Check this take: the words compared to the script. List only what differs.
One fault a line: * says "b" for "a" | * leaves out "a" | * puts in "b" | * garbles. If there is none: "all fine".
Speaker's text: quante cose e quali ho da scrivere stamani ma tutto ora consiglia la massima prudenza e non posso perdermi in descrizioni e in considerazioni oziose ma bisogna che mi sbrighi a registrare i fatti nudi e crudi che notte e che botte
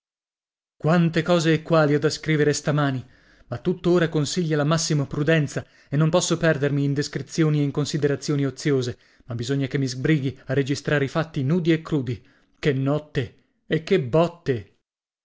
all fine